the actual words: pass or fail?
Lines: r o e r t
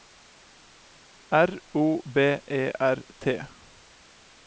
fail